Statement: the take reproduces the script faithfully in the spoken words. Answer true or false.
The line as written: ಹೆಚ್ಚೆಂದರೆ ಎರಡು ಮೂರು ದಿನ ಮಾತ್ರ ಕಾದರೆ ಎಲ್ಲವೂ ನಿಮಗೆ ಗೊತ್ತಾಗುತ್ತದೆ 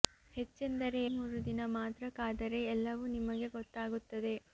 false